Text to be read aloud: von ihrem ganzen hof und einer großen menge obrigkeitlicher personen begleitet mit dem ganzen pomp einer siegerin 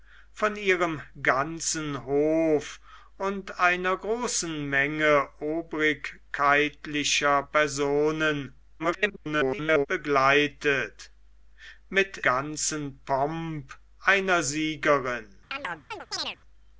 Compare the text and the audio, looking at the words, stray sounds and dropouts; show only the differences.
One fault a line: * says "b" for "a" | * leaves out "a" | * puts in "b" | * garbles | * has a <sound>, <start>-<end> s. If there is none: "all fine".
* garbles
* leaves out "dem"
* has a chirp, 15.5-16.4 s